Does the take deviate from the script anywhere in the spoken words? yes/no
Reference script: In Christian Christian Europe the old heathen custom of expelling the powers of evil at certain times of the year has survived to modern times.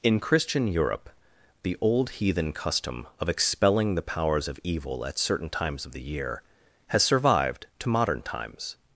yes